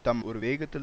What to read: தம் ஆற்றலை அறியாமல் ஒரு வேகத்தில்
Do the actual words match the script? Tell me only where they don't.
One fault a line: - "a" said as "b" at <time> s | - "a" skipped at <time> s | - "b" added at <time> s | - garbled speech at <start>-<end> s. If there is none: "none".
- "ஆற்றலை அறியாமல்" skipped at 0.2 s